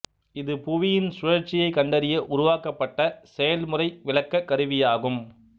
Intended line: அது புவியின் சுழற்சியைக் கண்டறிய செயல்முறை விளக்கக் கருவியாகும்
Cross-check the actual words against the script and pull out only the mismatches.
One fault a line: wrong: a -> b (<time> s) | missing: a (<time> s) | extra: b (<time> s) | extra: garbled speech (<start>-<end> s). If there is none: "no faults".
wrong: அது -> இது (0.3 s)
extra: உருவாக்கப்பட்ட (2.3 s)